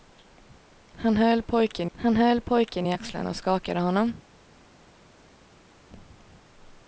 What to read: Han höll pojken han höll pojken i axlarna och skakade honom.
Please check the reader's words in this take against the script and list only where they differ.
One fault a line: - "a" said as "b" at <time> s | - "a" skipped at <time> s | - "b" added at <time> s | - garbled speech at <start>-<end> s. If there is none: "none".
none